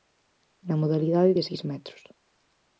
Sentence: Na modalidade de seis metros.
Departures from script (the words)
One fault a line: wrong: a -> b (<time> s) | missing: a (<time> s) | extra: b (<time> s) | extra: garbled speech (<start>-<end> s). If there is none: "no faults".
no faults